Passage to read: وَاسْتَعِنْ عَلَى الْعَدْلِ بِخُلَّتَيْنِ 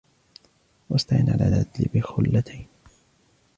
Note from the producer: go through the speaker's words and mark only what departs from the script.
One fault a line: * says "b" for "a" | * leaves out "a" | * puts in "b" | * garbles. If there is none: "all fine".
all fine